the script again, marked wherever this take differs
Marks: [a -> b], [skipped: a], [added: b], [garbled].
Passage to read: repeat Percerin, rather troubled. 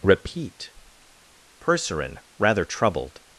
repeat Percerin, rather troubled.